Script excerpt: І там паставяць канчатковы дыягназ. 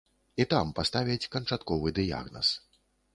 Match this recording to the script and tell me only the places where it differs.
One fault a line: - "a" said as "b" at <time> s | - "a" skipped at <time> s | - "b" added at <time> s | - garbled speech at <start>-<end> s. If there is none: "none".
none